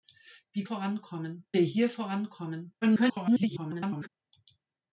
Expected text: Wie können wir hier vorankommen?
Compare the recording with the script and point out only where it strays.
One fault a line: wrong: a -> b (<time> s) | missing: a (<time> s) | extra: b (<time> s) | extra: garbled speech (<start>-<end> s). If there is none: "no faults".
wrong: können -> vorankommen (0.6 s)
extra: garbled speech (2.8-4.1 s)